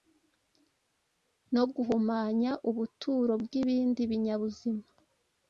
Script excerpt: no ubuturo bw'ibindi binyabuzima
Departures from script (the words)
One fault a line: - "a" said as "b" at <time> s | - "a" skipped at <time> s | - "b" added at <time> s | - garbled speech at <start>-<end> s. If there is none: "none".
- "guhumanya" added at 1.7 s